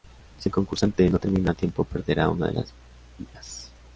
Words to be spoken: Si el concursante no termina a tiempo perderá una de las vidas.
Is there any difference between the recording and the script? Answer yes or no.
no